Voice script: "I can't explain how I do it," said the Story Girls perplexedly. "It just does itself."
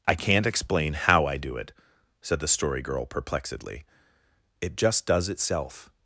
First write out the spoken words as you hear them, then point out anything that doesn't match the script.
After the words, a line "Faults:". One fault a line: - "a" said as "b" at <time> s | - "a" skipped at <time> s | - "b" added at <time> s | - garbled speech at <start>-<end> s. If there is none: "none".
"I can't explain how I do it," said the Story Girl perplexedly. "It just does itself."
Faults:
- "Girls" said as "Girl" at 2.8 s